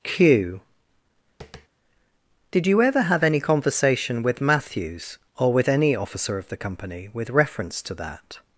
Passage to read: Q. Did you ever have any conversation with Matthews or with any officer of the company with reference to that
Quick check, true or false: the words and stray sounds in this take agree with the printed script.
false